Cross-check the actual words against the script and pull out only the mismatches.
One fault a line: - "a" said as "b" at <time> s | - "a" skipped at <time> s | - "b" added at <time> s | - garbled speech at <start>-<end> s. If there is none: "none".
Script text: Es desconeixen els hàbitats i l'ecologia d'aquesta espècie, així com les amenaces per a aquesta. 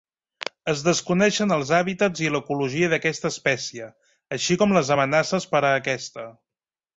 none